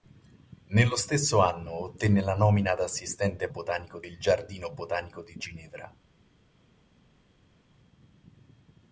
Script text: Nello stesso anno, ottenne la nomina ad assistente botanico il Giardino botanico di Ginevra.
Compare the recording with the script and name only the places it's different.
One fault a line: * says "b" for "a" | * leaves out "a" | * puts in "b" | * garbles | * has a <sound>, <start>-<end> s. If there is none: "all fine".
all fine